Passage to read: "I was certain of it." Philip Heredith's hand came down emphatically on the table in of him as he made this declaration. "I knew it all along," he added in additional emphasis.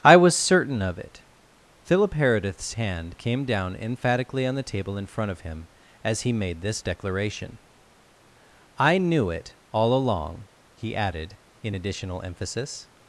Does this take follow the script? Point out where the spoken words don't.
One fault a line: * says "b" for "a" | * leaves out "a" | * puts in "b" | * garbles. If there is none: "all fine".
* puts in "front"